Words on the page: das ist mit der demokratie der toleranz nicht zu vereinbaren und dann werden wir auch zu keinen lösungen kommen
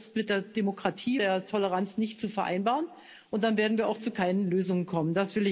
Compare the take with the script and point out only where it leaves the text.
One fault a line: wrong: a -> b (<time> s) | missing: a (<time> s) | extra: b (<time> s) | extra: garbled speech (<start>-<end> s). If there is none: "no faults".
no faults